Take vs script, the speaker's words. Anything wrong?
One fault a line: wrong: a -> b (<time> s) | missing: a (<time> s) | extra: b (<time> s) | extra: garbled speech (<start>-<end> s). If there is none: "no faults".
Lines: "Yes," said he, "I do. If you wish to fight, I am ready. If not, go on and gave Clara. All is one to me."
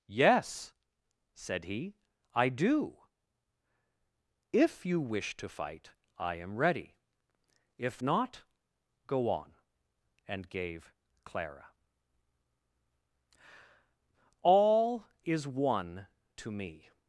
no faults